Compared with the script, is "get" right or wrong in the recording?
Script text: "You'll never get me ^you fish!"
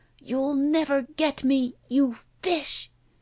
right